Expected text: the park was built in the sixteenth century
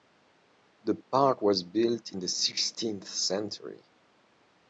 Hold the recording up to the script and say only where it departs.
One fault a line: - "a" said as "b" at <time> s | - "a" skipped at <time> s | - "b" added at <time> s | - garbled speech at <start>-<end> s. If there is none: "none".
none